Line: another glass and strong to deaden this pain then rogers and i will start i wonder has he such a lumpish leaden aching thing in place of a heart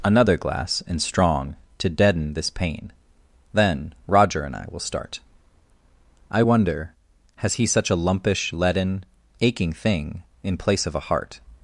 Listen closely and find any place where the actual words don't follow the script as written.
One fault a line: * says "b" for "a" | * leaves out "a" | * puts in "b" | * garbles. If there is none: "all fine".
* says "roger" for "rogers"